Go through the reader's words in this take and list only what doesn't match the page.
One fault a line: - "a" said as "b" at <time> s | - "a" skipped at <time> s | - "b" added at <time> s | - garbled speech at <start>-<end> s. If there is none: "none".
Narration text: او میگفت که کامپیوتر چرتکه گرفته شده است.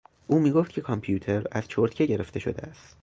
- "از" added at 1.5 s